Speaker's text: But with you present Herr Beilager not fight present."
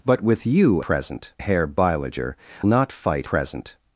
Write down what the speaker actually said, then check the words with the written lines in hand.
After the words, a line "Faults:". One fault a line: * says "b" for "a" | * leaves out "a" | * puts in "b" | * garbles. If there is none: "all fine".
But with you present Herr Beilager not fight present."
Faults:
all fine